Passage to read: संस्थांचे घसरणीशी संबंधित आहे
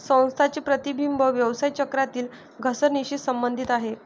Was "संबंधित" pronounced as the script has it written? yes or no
yes